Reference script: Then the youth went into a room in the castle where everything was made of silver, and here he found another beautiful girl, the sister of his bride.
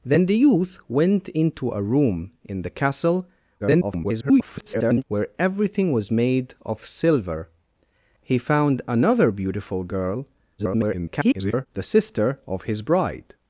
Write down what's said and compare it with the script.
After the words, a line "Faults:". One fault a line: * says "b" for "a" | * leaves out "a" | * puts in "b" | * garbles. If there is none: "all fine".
Then the youth went into a room in the castle [garbled] where everything was made of silver, he found another beautiful girl, [garbled] the sister of his bride.
Faults:
* garbles
* leaves out "and here"
* garbles